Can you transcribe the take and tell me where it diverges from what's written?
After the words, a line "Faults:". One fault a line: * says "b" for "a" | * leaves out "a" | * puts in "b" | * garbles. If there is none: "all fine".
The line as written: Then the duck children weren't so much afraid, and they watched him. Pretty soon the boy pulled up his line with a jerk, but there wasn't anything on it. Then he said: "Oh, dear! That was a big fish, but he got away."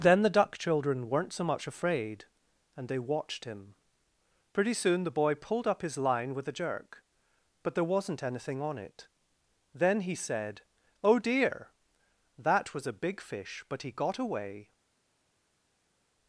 Then the duck children weren't so much afraid, and they watched him. Pretty soon the boy pulled up his line with a jerk, but there wasn't anything on it. Then he said: "Oh, dear! That was a big fish, but he got away."
Faults:
all fine